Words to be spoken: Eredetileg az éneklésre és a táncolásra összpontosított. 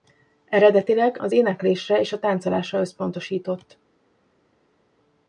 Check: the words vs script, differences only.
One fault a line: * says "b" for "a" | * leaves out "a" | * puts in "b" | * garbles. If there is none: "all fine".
all fine